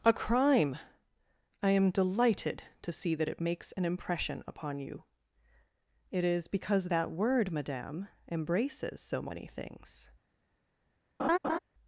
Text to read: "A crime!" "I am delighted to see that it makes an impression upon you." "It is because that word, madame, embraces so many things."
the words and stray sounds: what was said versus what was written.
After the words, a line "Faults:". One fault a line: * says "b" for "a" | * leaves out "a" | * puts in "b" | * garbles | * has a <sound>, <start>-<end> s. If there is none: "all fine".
"A crime!" "I am delighted to see that it makes an impression upon you." "It is because that word, madame, embraces so many things."
Faults:
* has a laugh, 11.2-11.6 s